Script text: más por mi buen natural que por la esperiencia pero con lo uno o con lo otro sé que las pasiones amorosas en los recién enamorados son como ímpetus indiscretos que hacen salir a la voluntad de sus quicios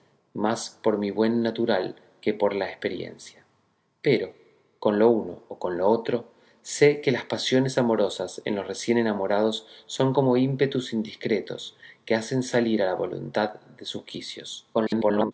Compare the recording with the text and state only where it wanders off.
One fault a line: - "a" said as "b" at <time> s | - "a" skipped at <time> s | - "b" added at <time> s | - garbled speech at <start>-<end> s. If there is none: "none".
- garbled speech at 14.7-15.3 s